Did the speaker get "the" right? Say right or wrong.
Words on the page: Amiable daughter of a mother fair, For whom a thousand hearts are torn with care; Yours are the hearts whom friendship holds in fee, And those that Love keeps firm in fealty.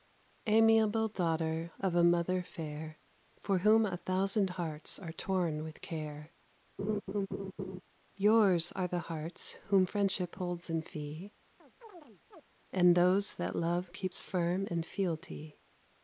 right